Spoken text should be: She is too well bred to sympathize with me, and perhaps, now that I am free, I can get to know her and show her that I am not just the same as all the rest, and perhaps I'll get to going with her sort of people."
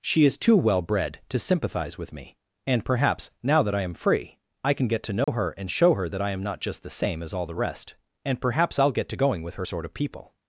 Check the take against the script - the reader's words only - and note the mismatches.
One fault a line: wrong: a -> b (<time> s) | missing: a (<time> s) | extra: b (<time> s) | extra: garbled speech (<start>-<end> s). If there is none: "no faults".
no faults